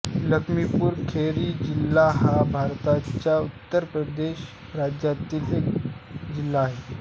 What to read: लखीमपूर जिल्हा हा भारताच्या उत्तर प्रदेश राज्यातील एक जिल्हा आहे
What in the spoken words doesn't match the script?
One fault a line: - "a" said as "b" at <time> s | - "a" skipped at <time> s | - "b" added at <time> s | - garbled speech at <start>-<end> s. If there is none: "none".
- "खेरी" added at 1.1 s